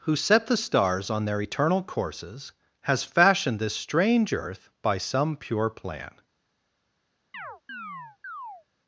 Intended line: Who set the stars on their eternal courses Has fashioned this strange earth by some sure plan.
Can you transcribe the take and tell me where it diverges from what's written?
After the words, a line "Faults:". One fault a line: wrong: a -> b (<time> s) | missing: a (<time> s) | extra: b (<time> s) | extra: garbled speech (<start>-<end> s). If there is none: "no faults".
Who set the stars on their eternal courses Has fashioned this strange earth by some pure plan.
Faults:
wrong: sure -> pure (5.4 s)